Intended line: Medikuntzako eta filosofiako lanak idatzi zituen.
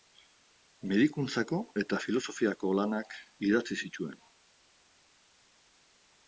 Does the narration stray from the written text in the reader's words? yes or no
no